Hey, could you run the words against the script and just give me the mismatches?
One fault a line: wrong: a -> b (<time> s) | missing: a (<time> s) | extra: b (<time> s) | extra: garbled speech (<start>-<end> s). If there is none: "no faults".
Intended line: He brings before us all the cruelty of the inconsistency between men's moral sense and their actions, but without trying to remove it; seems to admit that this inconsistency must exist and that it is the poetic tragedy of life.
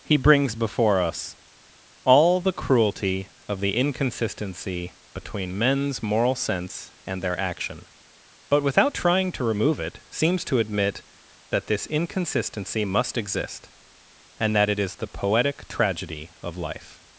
wrong: actions -> action (7.4 s)